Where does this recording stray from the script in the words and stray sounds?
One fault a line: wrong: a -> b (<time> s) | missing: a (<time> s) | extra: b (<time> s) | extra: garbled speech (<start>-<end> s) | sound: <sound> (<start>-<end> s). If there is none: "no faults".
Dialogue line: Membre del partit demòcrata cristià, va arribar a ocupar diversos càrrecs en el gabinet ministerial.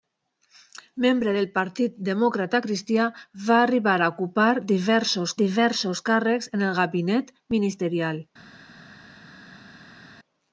extra: diversos (5.4 s)